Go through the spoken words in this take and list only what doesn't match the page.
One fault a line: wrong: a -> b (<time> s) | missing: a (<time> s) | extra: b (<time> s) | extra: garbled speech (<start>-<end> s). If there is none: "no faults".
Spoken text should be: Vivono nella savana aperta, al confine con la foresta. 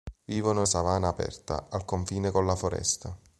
missing: nella (0.7 s)